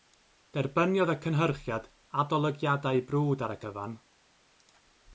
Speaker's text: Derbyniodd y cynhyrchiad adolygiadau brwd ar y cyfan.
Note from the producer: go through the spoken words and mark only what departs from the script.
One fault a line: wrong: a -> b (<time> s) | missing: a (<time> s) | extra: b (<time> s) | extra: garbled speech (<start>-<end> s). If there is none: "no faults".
no faults